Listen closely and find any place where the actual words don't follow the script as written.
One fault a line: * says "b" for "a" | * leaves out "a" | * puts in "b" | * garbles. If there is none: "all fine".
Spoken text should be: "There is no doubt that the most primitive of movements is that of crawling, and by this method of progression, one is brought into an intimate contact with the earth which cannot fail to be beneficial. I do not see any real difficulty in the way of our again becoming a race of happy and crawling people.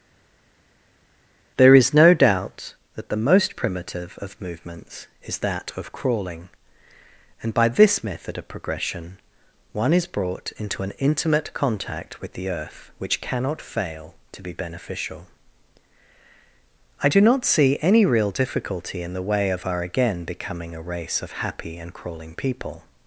all fine